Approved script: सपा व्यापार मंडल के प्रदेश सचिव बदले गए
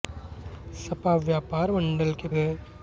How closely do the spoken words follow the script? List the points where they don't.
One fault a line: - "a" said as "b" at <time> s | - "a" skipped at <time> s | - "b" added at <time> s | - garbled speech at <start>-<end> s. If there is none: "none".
- "प्रदेश सचिव बदले" skipped at 2.3 s